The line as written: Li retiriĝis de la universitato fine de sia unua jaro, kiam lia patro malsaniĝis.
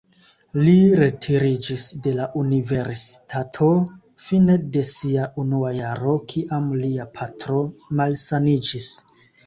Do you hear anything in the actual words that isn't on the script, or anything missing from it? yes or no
no